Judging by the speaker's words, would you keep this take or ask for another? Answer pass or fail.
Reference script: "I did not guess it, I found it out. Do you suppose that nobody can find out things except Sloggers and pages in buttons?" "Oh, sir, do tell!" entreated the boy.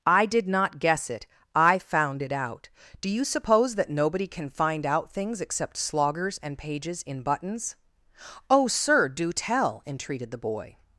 pass